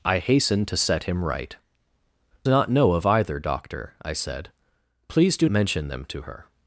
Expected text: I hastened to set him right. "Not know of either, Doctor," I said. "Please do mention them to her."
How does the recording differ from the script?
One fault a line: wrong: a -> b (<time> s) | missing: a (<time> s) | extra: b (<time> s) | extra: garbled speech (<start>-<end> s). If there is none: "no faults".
no faults